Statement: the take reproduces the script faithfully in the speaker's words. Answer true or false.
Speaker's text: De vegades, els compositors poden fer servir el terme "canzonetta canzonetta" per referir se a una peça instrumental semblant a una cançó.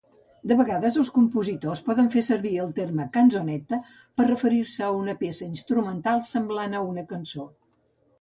false